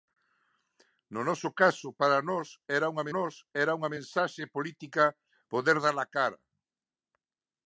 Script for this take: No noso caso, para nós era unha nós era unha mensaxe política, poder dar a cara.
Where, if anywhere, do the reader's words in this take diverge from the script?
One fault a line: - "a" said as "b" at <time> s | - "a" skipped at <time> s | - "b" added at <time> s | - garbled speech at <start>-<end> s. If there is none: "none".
none